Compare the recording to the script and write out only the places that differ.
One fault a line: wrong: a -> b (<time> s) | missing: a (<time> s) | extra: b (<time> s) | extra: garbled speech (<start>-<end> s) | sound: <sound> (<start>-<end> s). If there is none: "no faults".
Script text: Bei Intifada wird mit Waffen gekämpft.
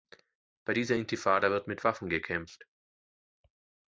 extra: dieser (0.7 s)